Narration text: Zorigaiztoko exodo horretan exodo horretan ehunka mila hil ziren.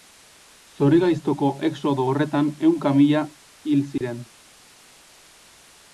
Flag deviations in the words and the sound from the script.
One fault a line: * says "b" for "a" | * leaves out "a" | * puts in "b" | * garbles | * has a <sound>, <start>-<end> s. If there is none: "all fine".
* leaves out "exodo horretan"
* has a dropout, 4.0-4.0 s